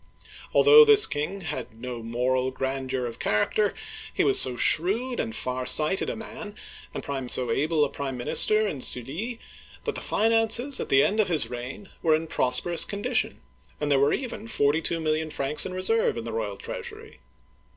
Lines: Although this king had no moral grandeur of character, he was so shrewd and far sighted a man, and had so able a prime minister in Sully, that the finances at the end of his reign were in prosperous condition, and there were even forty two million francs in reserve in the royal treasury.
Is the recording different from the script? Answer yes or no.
yes